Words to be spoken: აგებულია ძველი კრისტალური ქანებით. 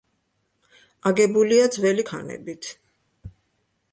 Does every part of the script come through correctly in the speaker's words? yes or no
no